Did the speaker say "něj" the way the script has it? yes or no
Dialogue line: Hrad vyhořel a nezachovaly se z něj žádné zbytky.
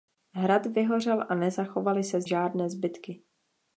no